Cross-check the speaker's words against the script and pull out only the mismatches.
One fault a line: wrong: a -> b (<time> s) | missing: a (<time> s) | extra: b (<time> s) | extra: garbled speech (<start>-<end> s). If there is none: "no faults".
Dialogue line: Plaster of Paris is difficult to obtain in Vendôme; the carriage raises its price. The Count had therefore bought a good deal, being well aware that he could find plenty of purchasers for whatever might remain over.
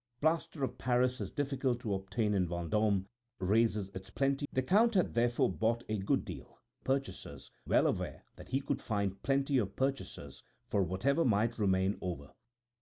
missing: the carriage (3.0 s)
wrong: price -> plenty (4.1 s)
wrong: being -> purchasers (6.9 s)